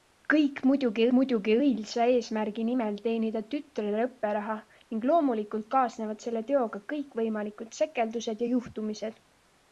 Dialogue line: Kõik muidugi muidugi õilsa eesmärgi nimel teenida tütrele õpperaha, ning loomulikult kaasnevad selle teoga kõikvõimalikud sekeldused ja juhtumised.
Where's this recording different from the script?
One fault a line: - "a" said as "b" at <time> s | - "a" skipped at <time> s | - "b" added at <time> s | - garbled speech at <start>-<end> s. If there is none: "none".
none